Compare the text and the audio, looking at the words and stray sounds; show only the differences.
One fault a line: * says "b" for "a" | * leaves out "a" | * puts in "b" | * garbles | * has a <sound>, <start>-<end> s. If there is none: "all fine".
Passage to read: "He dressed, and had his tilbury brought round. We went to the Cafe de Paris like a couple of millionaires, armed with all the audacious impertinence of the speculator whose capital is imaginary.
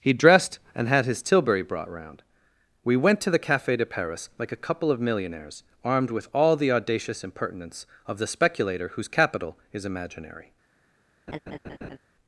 * has a laugh, 11.3-12.0 s